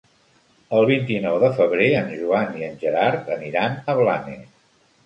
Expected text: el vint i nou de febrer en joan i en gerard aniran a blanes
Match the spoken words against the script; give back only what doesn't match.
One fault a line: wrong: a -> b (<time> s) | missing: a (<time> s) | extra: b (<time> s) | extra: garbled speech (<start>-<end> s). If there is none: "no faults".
no faults